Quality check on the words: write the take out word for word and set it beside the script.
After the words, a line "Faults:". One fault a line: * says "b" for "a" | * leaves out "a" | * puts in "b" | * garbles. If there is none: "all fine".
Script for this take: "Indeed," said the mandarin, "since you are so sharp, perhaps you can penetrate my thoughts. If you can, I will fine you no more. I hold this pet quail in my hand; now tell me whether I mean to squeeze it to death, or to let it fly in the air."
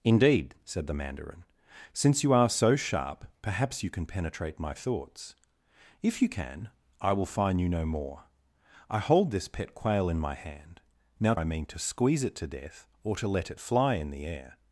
"Indeed," said the mandarin, "since you are so sharp, perhaps you can penetrate my thoughts. If you can, I will fine you no more. I hold this pet quail in my hand; now I mean to squeeze it to death, or to let it fly in the air."
Faults:
* leaves out "tell me whether"